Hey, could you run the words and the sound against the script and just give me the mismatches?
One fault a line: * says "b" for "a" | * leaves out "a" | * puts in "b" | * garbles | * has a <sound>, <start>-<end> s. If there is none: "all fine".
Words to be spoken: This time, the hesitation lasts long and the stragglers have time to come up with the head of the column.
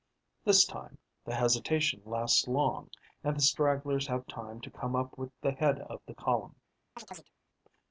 * has a chirp, 7.0-7.3 s